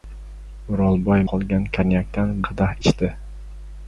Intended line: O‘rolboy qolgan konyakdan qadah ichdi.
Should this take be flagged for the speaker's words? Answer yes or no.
no